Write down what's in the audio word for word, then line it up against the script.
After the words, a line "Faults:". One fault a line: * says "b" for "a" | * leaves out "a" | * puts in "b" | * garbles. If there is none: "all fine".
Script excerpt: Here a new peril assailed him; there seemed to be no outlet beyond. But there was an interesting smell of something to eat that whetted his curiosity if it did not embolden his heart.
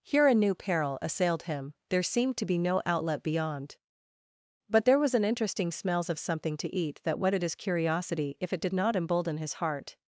Here a new peril assailed him; there seemed to be no outlet beyond. But there was an interesting smells of something to eat that whetted his curiosity if it did not embolden his heart.
Faults:
* says "smells" for "smell"